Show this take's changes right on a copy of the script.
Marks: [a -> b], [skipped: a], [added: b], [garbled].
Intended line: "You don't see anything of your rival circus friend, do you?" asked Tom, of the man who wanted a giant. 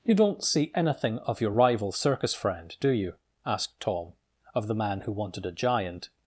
"You don't see anything of your rival circus friend, do you?" asked Tom, of the man who wanted a giant.